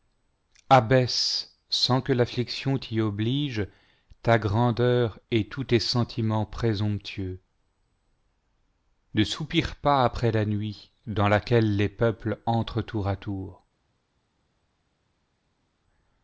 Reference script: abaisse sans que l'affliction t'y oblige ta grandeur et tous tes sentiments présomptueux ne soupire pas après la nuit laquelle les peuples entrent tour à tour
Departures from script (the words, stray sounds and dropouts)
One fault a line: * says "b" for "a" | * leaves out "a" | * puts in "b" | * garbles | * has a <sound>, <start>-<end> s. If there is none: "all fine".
* puts in "dans"